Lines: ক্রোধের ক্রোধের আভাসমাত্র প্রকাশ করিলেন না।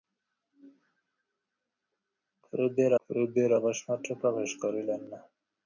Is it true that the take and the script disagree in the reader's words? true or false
false